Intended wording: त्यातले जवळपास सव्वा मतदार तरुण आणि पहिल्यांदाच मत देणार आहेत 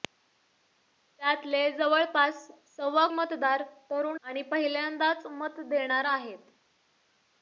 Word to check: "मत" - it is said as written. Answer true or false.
true